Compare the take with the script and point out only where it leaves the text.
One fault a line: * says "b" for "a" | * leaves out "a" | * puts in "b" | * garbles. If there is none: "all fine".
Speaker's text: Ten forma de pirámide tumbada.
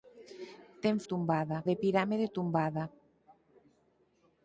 * says "tumbada" for "forma"